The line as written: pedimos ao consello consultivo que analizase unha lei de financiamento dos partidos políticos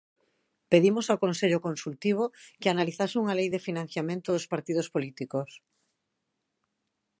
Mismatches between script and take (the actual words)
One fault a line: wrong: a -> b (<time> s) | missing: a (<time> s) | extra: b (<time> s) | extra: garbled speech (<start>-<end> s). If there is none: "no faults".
no faults